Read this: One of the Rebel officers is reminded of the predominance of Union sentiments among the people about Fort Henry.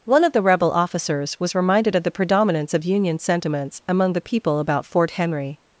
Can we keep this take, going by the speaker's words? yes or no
no